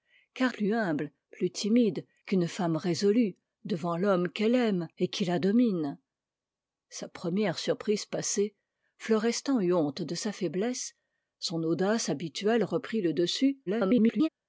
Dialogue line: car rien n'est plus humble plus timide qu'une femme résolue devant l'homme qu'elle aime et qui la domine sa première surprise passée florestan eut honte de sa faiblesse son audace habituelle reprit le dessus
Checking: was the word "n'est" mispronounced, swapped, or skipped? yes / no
yes